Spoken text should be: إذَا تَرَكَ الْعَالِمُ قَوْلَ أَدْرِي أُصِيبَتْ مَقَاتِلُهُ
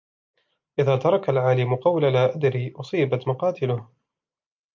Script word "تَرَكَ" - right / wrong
right